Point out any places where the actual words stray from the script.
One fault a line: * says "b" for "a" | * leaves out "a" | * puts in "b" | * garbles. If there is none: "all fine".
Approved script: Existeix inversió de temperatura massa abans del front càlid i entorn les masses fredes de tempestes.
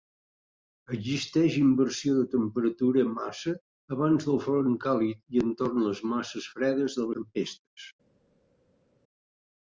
all fine